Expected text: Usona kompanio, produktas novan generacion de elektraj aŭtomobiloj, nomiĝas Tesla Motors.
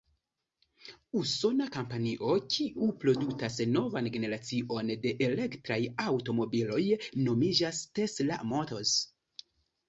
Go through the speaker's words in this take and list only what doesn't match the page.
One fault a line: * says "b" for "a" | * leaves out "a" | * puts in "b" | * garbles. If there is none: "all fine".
* puts in "kiu"